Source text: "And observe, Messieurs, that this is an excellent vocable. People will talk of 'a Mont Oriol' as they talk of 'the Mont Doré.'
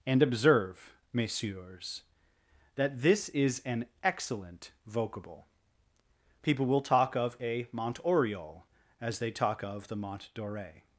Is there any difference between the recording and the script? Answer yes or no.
no